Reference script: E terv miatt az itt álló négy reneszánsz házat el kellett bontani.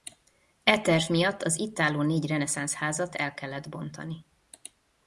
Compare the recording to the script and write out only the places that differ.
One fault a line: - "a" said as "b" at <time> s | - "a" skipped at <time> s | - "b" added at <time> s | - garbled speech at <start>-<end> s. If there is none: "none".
none